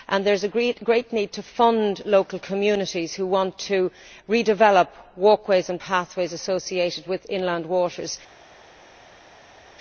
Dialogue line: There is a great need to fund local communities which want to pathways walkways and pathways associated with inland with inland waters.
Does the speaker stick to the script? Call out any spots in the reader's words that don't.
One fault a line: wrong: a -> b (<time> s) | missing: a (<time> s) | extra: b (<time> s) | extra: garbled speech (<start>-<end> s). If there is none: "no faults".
wrong: pathways -> redevelop (4.3 s)
missing: with inland (7.7 s)